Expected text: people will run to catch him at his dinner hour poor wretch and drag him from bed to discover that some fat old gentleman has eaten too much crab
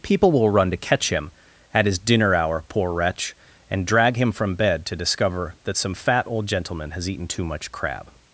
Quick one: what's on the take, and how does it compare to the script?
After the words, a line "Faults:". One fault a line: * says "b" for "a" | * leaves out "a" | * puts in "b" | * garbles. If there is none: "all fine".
people will run to catch him at his dinner hour poor wretch and drag him from bed to discover that some fat old gentleman has eaten too much crab
Faults:
all fine